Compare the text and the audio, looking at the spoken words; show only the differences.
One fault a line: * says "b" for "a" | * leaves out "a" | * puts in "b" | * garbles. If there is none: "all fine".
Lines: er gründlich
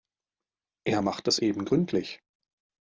* puts in "macht es eben"